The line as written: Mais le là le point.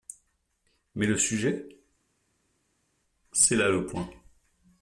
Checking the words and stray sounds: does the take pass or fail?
fail